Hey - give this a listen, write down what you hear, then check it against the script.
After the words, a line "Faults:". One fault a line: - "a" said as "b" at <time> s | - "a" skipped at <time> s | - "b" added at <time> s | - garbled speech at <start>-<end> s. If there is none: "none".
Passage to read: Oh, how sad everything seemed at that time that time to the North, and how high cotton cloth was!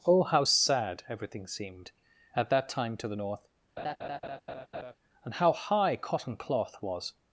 Oh, how sad everything seemed at that time to the North, and how high cotton cloth was!
Faults:
- "that time" skipped at 3.0 s